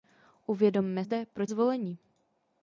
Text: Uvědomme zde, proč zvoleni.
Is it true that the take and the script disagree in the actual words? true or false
false